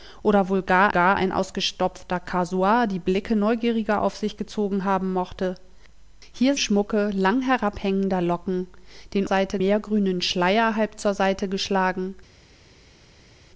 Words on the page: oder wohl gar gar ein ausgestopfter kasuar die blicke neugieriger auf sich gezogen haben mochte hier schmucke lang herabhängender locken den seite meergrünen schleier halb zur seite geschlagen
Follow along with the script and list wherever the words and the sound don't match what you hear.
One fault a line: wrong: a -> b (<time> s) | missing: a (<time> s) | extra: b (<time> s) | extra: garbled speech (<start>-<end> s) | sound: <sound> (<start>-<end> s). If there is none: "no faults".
no faults